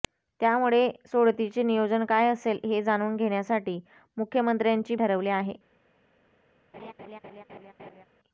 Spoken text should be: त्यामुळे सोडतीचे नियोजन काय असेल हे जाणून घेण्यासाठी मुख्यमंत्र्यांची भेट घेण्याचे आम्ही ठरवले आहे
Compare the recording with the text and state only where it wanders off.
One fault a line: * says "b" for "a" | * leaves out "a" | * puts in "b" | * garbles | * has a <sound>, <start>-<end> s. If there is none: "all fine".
* leaves out "भेट घेण्याचे आम्ही"
* has a laugh, 6.7-8.1 s